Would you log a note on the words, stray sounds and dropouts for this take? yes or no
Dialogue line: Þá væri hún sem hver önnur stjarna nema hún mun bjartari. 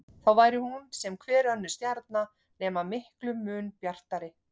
yes